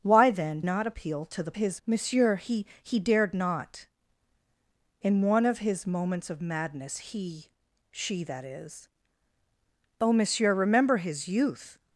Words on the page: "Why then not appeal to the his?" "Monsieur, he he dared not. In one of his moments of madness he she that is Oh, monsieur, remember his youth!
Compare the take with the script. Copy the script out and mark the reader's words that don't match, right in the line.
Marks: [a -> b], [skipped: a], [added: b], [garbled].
"Why then not appeal to the his?" "Monsieur, he he dared not. In one of his moments of madness he she that is Oh, monsieur, remember his youth!